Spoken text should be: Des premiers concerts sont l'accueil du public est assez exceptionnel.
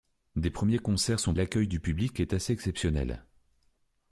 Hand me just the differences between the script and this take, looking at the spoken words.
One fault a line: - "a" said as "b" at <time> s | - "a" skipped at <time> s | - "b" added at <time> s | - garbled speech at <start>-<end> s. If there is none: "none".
none